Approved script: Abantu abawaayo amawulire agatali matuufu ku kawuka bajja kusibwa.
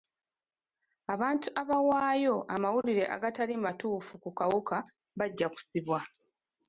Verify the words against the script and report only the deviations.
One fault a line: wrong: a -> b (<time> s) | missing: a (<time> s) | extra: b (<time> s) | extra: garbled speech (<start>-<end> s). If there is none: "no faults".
no faults